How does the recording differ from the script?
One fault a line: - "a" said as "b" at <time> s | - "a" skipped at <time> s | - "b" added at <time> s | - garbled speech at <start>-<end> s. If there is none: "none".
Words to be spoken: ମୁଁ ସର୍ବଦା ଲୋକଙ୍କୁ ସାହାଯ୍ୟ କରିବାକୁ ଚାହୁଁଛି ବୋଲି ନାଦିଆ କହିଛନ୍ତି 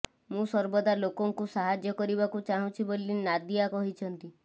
none